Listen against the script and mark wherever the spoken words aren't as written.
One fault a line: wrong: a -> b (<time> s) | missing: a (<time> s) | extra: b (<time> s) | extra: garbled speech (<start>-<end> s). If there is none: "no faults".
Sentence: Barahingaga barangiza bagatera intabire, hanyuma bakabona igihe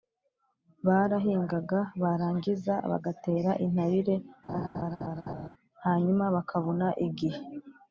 no faults